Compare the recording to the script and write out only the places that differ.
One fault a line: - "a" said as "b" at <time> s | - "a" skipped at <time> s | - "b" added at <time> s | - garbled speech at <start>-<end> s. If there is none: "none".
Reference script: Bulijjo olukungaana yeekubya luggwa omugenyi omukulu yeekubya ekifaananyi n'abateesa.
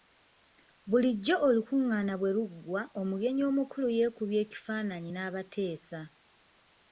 - "yeekubya" said as "bwe" at 2.2 s